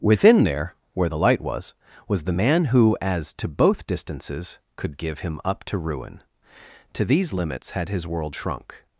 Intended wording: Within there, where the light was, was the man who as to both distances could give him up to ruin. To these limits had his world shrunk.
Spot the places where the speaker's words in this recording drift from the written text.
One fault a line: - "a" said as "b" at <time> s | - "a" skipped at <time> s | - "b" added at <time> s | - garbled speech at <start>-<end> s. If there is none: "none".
none